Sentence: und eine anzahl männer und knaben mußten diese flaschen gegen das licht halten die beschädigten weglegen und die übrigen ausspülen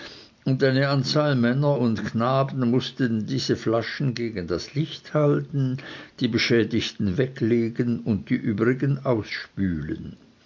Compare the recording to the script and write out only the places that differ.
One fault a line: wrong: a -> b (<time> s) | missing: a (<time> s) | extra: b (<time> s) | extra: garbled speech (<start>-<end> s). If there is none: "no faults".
no faults